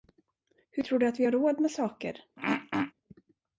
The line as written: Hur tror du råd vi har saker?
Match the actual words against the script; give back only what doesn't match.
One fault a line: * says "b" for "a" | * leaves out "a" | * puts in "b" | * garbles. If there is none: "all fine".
* says "att" for "råd"
* puts in "råd med"